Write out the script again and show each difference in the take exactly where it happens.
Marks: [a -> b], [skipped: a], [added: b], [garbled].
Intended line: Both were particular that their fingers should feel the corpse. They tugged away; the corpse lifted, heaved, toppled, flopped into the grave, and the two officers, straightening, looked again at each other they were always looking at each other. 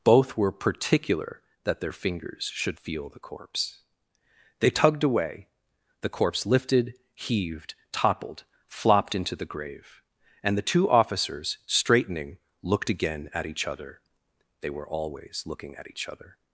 Both were particular that their fingers should feel the corpse. They tugged away; the corpse lifted, heaved, toppled, flopped into the grave, and the two officers, straightening, looked again at each other they were always looking at each other.